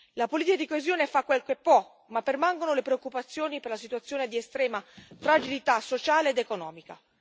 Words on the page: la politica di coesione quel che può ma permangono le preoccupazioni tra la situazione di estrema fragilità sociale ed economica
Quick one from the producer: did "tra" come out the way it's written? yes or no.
no